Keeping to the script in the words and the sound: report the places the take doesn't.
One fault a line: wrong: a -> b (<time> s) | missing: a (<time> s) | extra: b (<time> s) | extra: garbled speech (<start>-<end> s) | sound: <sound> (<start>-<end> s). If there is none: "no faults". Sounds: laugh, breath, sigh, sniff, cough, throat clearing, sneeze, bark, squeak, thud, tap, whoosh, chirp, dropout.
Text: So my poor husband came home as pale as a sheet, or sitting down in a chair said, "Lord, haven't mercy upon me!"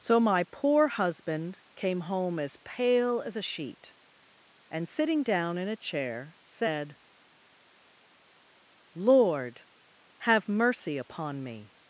wrong: or -> and (4.7 s)
wrong: haven't -> have (10.2 s)